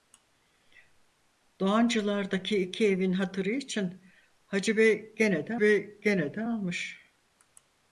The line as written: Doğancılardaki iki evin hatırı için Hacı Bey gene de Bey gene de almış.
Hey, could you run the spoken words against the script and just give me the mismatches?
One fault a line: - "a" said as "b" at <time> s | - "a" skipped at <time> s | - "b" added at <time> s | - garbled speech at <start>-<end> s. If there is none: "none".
none